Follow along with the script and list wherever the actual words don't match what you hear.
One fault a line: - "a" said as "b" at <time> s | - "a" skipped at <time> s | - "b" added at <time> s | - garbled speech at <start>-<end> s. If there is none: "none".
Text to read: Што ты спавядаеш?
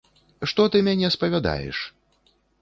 - "мяне" added at 0.9 s